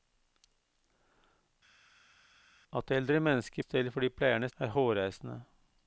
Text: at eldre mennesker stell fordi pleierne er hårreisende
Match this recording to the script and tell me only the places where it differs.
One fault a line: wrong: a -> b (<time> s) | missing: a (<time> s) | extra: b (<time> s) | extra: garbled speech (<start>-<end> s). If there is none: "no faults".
no faults